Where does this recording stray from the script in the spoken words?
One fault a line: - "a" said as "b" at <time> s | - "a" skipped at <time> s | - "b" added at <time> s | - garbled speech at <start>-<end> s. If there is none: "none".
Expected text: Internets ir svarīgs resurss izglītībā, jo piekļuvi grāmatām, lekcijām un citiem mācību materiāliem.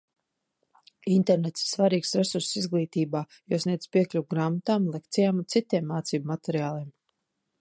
- "sniedz" added at 3.6 s